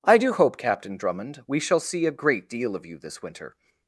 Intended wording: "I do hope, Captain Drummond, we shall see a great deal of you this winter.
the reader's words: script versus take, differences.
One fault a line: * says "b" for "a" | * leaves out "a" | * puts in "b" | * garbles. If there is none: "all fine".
all fine